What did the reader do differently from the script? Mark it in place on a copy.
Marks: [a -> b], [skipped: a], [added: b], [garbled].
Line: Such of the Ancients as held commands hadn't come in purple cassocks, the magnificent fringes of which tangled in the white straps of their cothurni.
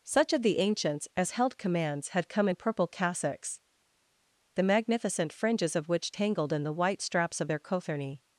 Such of the Ancients as held commands [hadn't -> had] come in purple cassocks, the magnificent fringes of which tangled in the white straps of their cothurni.